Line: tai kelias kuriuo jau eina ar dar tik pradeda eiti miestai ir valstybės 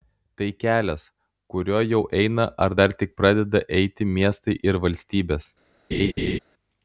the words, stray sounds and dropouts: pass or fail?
fail